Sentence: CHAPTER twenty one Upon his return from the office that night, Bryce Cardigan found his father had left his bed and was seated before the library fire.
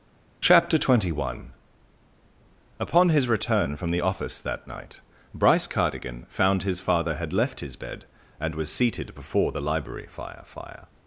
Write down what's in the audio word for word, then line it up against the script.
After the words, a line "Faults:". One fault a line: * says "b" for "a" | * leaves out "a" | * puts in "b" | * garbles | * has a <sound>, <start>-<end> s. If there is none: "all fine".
CHAPTER twenty one Upon his return from the office that night, Bryce Cardigan found his father had left his bed and was seated before the library fire fire.
Faults:
* puts in "fire"